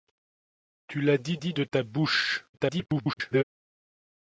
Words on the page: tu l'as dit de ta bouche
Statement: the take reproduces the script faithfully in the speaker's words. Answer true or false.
false